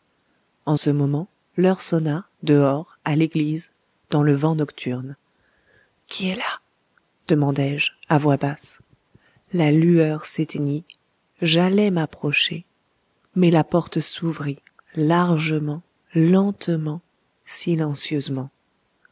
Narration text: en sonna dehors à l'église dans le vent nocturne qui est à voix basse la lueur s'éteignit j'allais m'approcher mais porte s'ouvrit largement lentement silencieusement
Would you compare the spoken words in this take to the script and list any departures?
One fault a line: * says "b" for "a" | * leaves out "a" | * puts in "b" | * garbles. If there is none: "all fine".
* puts in "ce moment l'heure"
* puts in "là demandai je"
* puts in "la"